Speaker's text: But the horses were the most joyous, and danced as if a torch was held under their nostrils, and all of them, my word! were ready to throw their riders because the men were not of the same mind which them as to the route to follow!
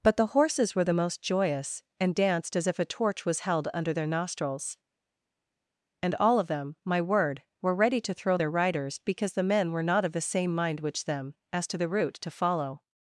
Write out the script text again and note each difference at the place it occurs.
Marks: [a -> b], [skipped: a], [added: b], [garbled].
But the horses were the most joyous, and danced as if a torch was held under their nostrils, and all of them, my word! were ready to throw their riders because the men were not of the same mind which them as to the route to follow!